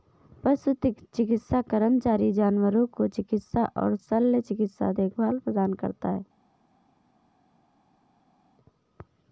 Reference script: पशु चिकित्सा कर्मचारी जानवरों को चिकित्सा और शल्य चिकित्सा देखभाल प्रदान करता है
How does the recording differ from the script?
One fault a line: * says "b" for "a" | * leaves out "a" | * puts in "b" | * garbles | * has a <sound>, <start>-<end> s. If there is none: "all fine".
all fine